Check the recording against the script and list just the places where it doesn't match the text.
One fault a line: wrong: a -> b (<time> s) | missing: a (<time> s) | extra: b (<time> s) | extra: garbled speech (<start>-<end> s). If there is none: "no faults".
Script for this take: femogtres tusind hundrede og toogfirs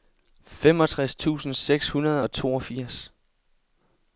extra: seks (1.5 s)